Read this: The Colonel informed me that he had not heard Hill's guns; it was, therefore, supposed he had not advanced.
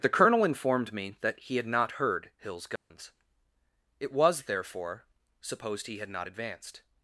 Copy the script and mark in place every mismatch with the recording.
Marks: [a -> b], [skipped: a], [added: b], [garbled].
The Colonel informed me that he had not heard Hill's guns; it was, therefore, supposed he had not advanced.